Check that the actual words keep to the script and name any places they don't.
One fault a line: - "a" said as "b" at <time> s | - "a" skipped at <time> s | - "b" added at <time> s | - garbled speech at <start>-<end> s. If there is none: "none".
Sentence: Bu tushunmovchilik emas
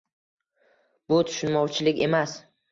none